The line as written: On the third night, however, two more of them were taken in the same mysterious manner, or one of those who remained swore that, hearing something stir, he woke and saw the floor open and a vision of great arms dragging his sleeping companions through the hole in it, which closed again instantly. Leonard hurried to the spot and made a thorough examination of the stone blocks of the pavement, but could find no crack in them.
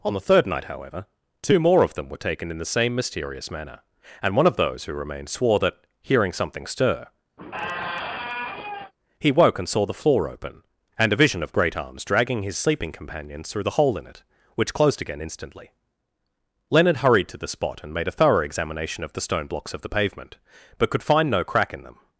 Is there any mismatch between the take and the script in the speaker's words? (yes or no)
yes